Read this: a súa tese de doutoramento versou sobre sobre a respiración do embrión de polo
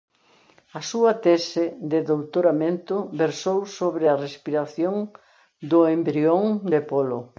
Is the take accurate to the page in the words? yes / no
no